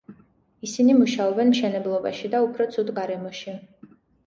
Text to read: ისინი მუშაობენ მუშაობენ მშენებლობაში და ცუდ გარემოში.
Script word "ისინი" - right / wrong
right